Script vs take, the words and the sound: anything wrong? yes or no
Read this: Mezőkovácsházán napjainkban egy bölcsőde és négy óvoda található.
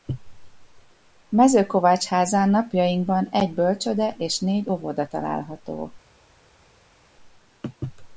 no